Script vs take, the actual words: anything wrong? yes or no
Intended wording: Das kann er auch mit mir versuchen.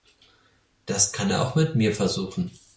no